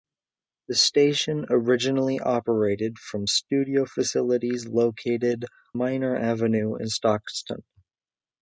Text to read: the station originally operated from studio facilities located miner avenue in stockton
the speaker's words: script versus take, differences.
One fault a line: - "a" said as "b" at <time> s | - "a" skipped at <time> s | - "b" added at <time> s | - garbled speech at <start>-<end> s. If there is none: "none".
none